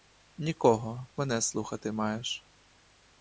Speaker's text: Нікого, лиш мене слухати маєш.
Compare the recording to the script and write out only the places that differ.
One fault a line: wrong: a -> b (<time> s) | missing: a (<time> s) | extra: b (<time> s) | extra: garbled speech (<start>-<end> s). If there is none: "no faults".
missing: лиш (1.1 s)